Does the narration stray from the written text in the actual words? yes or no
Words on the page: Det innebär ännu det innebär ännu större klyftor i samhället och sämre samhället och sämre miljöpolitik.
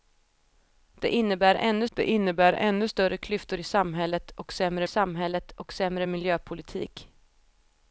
no